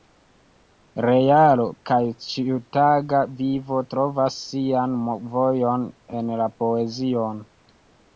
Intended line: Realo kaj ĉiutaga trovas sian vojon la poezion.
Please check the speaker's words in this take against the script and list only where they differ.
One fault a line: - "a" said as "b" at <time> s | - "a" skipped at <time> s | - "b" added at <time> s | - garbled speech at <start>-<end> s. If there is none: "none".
- "vivo" added at 3.4 s
- "en" added at 6.2 s